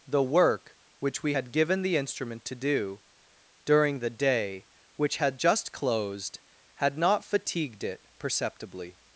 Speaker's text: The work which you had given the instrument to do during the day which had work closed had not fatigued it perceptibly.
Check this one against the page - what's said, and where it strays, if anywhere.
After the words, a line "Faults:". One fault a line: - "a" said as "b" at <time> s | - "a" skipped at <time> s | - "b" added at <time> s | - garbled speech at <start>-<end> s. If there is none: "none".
The work which we had given the instrument to do during the day which had just closed had not fatigued it perceptibly.
Faults:
- "you" said as "we" at 1.2 s
- "work" said as "just" at 5.4 s